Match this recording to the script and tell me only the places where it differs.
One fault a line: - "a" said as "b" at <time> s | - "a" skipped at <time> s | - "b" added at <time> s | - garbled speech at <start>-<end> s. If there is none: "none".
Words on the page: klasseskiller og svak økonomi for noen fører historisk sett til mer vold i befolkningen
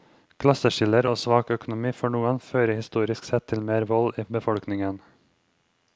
none